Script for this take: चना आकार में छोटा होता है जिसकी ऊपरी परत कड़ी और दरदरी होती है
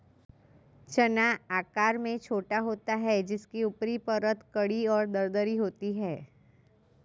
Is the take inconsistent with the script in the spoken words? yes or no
no